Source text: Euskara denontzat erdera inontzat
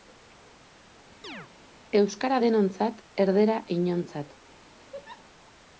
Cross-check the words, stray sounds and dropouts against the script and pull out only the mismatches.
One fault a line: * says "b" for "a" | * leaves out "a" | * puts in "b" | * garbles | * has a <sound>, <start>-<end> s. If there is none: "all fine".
* has a chirp, 1.2-1.5 s
* has a laugh, 4.9-5.3 s